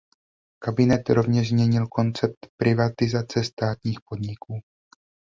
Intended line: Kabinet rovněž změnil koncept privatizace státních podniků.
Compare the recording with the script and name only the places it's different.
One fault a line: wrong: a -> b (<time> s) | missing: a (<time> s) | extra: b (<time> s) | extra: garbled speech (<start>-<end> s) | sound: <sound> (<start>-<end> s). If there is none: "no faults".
no faults